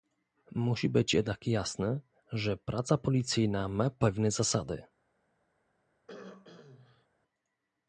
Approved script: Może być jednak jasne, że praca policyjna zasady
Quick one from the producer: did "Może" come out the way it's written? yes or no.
no